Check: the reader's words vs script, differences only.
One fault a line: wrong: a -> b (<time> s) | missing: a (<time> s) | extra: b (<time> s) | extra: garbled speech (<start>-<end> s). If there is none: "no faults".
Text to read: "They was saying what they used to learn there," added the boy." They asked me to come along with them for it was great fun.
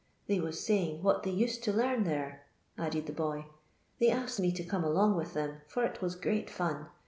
no faults